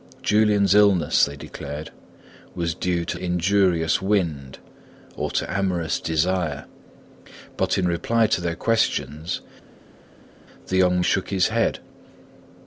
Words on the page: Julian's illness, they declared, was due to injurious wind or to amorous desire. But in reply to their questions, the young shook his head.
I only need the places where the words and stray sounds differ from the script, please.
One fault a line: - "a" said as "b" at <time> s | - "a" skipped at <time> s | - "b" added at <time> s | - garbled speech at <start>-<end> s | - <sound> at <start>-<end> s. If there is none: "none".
none